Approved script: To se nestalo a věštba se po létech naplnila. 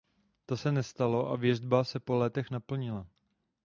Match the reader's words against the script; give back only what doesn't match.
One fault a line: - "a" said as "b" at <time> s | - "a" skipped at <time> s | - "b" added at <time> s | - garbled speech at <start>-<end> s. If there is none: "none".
none